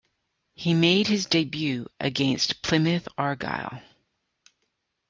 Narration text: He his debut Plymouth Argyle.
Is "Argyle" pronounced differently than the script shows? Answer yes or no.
no